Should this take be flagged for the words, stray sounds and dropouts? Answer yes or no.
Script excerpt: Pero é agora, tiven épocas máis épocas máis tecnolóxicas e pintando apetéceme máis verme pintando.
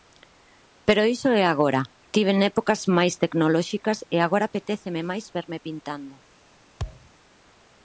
yes